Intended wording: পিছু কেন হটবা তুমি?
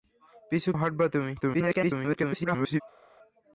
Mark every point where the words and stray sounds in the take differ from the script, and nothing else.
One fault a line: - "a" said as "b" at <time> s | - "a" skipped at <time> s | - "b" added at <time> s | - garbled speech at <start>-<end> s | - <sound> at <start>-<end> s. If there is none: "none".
- "কেন" skipped at 0.7 s
- garbled speech at 1.4-2.8 s